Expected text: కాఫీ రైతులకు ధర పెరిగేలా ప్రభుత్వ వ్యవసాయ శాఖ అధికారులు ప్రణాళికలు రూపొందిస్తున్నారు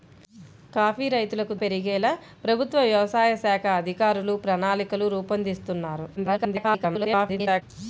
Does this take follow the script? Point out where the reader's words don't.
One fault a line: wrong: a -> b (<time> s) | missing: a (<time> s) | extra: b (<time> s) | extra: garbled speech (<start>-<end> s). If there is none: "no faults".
missing: ధర (1.5 s)
extra: garbled speech (6.2-7.6 s)